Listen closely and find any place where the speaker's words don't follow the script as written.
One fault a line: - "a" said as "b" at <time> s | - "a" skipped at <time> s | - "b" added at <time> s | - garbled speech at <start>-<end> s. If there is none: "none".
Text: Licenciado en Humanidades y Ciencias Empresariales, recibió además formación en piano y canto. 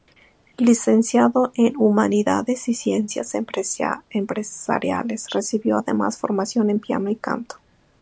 none